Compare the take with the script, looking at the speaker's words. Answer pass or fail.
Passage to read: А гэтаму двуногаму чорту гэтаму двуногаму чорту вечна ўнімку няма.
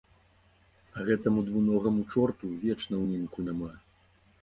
fail